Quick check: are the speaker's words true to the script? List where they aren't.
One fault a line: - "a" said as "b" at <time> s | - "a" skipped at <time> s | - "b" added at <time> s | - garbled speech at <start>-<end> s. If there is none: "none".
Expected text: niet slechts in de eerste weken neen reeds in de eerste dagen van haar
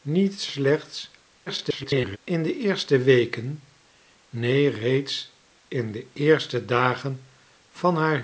- garbled speech at 1.5-2.2 s